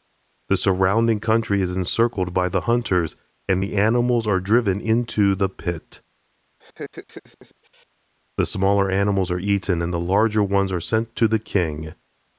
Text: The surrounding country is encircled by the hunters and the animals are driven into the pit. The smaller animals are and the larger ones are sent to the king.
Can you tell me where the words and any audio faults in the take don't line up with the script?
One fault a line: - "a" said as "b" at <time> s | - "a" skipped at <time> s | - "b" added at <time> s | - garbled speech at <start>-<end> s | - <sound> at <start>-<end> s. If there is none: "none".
- laugh at 6.6-7.9 s
- "eaten" added at 9.4 s